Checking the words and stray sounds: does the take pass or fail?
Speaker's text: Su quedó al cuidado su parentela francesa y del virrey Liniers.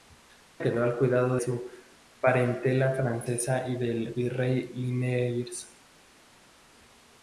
pass